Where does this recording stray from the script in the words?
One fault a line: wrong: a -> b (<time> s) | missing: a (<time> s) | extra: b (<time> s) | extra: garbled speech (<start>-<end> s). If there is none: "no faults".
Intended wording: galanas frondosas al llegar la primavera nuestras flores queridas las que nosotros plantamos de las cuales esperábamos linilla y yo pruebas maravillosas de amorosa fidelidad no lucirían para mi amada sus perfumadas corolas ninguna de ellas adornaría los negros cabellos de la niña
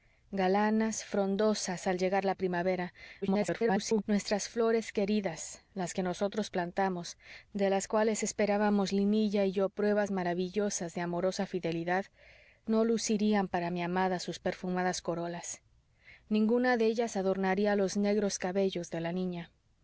extra: garbled speech (3.2-4.0 s)